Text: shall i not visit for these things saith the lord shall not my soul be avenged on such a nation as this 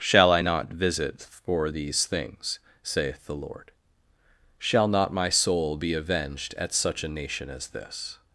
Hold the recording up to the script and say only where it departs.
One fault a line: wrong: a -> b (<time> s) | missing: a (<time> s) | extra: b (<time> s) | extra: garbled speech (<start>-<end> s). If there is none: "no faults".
wrong: on -> at (6.6 s)